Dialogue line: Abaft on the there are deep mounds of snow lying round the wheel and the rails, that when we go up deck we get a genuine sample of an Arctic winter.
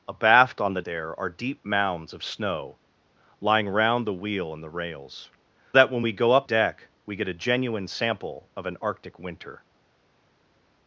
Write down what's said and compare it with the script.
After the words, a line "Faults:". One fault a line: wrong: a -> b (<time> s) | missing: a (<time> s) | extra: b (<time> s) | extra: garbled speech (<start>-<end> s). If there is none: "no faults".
Abaft on the there are deep mounds of snow lying round the wheel and the rails, that when we go up deck we get a genuine sample of an Arctic winter.
Faults:
no faults